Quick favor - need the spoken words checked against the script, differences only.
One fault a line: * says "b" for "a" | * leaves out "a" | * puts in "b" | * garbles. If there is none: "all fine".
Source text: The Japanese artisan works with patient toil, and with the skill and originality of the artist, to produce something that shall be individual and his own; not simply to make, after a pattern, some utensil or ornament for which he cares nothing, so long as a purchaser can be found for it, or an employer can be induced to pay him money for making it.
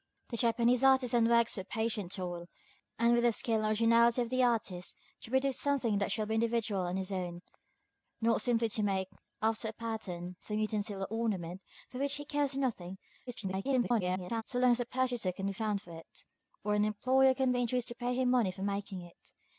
* garbles